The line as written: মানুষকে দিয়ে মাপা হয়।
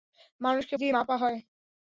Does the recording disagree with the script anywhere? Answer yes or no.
no